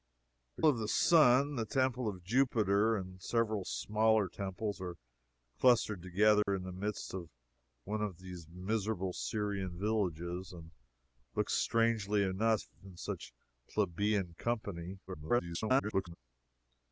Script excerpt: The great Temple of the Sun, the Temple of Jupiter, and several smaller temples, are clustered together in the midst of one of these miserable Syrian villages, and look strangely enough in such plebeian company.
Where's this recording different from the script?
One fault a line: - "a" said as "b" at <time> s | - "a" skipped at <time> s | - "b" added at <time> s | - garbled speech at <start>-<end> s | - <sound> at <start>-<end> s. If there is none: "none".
- "great Temple" skipped at 0.6 s
- dropout at 6.4-6.5 s
- garbled speech at 15.1-16.2 s